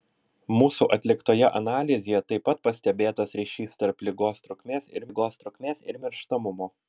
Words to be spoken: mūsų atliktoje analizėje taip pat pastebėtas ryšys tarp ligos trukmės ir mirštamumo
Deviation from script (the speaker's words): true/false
true